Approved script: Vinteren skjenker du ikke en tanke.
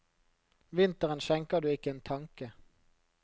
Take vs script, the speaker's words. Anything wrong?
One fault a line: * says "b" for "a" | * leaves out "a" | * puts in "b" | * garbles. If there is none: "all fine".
all fine